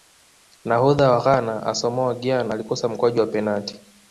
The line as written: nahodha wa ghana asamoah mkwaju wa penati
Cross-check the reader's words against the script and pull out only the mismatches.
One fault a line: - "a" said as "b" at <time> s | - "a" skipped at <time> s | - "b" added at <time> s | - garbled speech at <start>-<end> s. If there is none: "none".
- "gyan alikosa" added at 2.2 s